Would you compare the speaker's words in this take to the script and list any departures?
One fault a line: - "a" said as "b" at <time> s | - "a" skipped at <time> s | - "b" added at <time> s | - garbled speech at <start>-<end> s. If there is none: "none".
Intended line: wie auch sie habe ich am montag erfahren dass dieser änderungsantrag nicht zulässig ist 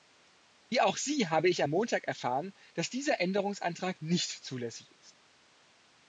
none